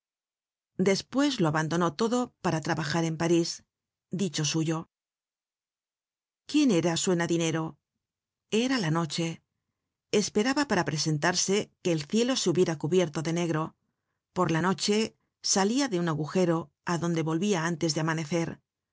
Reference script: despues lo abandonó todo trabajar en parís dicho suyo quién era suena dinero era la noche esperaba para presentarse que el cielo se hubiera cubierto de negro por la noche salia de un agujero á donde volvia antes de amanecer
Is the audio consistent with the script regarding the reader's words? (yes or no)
no